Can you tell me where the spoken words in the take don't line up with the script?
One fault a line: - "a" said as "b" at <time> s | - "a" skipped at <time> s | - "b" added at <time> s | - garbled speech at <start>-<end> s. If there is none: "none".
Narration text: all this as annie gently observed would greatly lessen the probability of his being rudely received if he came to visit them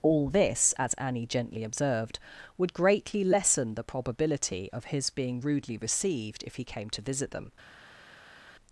none